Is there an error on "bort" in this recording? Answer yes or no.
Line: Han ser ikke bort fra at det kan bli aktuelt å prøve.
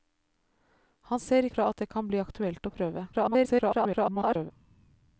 yes